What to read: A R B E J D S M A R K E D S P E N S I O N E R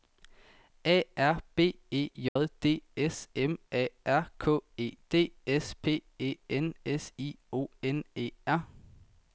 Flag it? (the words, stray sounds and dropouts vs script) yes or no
yes